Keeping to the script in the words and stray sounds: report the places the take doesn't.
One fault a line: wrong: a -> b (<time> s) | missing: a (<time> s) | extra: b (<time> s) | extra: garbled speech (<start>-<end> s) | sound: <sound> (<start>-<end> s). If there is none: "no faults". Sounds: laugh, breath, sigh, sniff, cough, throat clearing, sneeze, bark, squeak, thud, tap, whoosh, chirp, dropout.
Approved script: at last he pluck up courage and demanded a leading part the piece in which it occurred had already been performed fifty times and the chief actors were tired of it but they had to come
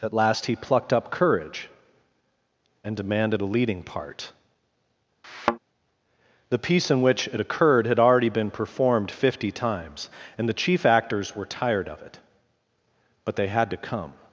wrong: pluck -> plucked (0.6 s)
sound: thud (5.2-5.6 s)